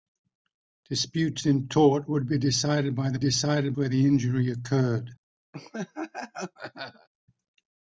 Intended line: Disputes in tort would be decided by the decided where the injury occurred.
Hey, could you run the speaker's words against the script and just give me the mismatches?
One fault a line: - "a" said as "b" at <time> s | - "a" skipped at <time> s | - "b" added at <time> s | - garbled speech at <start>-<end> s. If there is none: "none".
none